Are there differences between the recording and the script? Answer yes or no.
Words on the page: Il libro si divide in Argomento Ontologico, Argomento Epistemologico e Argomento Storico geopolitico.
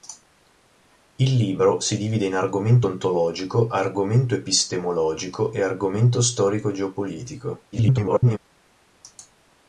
yes